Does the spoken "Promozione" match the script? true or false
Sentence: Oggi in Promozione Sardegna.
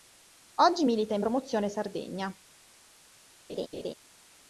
true